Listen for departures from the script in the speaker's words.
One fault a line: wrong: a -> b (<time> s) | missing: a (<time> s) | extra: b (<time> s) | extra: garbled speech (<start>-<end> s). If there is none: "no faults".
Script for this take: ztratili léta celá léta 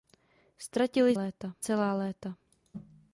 no faults